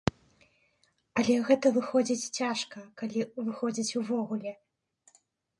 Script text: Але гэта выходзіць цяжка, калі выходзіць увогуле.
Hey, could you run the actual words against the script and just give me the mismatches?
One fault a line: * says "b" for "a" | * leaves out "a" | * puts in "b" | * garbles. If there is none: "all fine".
all fine